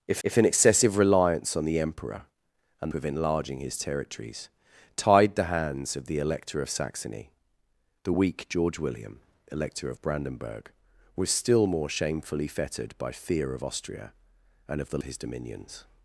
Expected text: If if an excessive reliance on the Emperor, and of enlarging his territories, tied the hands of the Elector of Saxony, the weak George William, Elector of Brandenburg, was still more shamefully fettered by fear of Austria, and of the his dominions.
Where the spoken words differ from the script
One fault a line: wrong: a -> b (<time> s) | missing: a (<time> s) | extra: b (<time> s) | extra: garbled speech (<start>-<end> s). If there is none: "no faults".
no faults